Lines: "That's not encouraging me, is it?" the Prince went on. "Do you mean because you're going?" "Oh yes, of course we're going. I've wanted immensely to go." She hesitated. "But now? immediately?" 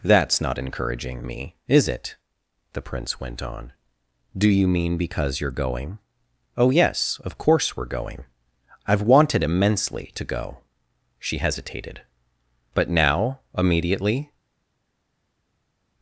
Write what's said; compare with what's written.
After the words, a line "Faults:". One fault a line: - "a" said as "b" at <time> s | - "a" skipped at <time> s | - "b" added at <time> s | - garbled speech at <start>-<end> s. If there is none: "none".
"That's not encouraging me, is it?" the Prince went on. "Do you mean because you're going?" "Oh yes, of course we're going. I've wanted immensely to go." She hesitated. "But now? immediately?"
Faults:
none